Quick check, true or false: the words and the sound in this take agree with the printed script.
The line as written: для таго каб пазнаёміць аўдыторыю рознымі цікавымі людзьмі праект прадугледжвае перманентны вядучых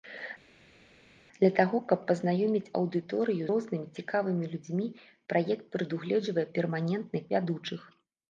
true